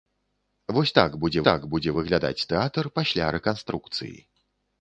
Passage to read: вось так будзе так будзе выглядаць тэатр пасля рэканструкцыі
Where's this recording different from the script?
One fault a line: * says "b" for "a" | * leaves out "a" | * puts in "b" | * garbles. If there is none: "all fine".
all fine